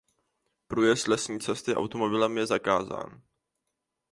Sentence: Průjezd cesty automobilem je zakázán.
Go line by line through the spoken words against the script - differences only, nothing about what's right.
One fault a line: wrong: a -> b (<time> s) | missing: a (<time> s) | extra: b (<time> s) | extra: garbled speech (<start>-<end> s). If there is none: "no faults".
extra: lesní (1.1 s)